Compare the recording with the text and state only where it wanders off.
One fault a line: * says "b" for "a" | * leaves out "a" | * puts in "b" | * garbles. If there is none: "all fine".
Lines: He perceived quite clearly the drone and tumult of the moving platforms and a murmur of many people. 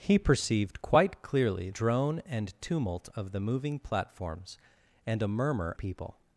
* leaves out "the"
* leaves out "of many"